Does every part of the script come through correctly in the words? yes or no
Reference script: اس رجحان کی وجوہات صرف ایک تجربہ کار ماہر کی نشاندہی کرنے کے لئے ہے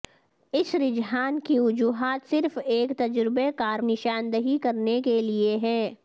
no